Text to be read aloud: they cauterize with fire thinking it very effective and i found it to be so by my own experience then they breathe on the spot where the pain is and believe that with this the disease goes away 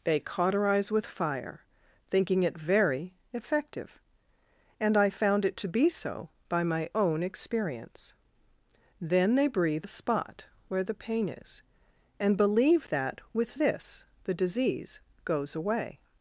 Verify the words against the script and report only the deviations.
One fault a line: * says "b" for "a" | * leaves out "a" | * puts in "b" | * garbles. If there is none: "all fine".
* leaves out "on"